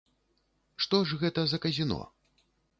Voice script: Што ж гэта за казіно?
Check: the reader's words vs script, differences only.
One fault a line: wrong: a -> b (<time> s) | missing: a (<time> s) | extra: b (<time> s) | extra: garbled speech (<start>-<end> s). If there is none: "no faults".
no faults